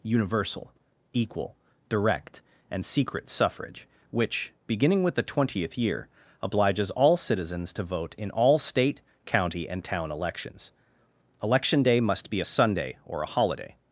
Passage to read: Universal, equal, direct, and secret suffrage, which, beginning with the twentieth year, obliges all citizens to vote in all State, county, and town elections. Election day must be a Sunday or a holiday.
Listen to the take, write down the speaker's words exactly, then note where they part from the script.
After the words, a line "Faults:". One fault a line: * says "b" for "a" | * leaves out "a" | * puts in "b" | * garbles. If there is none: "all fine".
Universal, equal, direct, and secret suffrage, which, beginning with the twentieth year, obliges all citizens to vote in all State, county, and town elections. Election day must be a Sunday or a holiday.
Faults:
all fine